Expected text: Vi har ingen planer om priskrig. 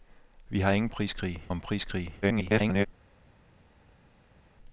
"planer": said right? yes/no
no